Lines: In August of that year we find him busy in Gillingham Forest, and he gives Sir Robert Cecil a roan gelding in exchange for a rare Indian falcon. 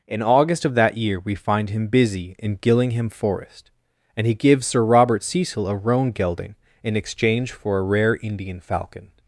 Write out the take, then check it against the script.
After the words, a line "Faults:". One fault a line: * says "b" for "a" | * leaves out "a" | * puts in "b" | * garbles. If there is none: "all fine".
In August of that year we find him busy in Gillingham Forest, and he gives Sir Robert Cecil a roan gelding in exchange for a rare Indian falcon.
Faults:
all fine